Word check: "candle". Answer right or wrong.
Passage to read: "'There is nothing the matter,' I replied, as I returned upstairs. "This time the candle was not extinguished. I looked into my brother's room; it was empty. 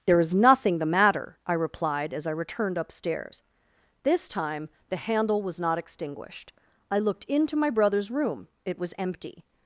wrong